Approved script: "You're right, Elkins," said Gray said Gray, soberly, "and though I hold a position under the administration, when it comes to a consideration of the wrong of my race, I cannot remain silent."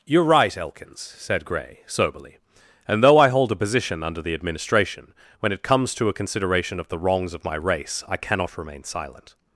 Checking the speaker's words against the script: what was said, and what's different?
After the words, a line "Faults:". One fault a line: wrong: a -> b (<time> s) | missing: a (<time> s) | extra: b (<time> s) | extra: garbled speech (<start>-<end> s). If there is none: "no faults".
"You're right, Elkins," said Gray, soberly, "and though I hold a position under the administration, when it comes to a consideration of the wrongs of my race, I cannot remain silent."
Faults:
missing: said Gray (1.8 s)
wrong: wrong -> wrongs (7.0 s)